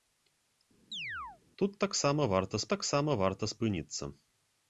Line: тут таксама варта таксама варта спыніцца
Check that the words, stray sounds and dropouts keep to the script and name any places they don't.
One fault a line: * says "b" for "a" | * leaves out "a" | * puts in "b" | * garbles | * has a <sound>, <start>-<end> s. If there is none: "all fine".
* has a chirp, 0.9-1.4 s